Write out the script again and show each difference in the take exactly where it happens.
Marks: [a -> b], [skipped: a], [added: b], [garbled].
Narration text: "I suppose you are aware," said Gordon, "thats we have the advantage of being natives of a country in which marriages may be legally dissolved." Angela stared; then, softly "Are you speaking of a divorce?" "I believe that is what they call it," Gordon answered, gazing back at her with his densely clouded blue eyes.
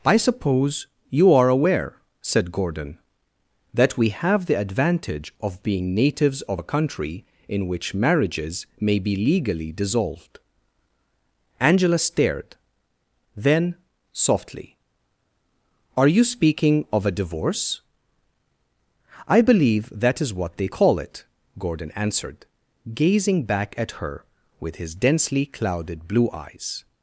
"I suppose you are aware," said Gordon, ["thats -> that] we have the advantage of being natives of a country in which marriages may be legally dissolved." Angela stared; then, softly "Are you speaking of a divorce?" "I believe that is what they call it," Gordon answered, gazing back at her with his densely clouded blue eyes.